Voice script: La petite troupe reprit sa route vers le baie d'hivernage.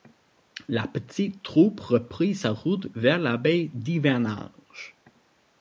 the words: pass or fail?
fail